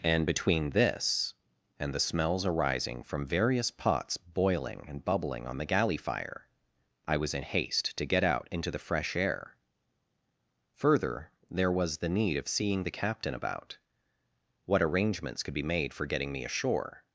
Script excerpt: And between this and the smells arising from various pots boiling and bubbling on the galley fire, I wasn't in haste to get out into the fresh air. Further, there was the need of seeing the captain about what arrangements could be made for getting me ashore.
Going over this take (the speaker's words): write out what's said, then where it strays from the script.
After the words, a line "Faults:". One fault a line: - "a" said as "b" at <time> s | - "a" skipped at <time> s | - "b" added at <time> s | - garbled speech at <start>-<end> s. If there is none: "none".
And between this and the smells arising from various pots boiling and bubbling on the galley fire, I was in haste to get out into the fresh air. Further, there was the need of seeing the captain about what arrangements could be made for getting me ashore.
Faults:
- "wasn't" said as "was" at 7.2 s